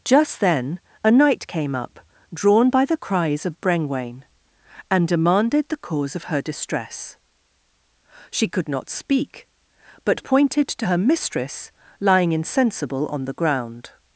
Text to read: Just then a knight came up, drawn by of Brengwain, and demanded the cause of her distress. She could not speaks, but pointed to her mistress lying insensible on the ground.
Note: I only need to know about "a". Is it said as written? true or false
true